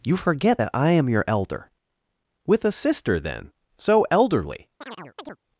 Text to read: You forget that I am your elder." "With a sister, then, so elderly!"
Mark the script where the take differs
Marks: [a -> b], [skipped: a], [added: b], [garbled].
You forget that I am your elder." "With a sister, then, so elderly!"